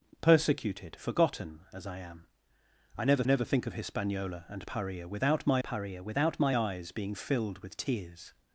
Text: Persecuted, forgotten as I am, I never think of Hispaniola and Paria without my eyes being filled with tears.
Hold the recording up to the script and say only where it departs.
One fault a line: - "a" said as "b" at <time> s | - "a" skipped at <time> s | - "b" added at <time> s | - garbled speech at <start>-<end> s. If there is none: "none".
- "never" added at 3.3 s
- "Paria without my" added at 5.6 s